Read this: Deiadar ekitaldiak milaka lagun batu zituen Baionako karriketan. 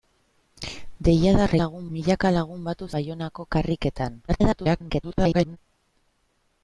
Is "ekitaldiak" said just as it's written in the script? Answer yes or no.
no